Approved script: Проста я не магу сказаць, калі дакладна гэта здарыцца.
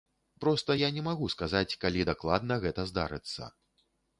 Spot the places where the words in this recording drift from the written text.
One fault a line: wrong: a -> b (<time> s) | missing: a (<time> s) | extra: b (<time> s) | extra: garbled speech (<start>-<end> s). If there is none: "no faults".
no faults